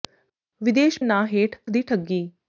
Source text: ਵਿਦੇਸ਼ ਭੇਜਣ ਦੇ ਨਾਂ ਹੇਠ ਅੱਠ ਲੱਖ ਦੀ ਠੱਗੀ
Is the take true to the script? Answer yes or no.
no